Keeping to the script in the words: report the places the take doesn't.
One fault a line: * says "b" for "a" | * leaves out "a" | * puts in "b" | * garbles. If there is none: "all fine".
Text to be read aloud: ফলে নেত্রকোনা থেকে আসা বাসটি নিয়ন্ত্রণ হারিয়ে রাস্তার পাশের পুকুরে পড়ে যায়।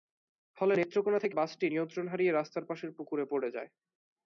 * leaves out "আসা"